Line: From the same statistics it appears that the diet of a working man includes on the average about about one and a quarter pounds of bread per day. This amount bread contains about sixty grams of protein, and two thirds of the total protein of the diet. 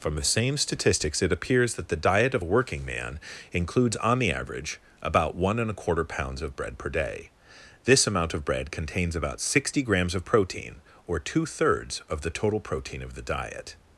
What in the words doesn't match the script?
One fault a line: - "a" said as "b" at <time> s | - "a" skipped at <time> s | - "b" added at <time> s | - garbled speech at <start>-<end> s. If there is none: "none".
- "about" skipped at 5.3 s
- "of" added at 8.3 s
- "and" said as "or" at 11.0 s